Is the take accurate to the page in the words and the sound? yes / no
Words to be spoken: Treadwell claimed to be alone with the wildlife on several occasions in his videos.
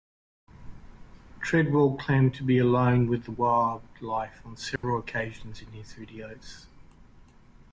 no